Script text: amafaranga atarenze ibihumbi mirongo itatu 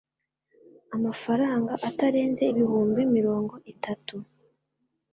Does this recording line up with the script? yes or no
yes